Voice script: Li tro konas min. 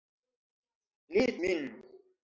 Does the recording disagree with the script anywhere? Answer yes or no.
yes